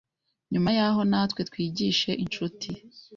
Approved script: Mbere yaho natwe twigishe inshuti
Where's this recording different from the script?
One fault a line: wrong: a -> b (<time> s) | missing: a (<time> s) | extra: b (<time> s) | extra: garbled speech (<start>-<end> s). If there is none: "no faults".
wrong: Mbere -> Nyuma (0.5 s)